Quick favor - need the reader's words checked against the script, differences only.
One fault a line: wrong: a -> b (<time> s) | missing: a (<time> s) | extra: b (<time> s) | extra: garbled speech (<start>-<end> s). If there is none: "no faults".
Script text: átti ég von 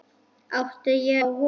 no faults